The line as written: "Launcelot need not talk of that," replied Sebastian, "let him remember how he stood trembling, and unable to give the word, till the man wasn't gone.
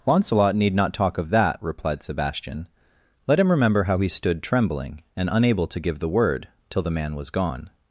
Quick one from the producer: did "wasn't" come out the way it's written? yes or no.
no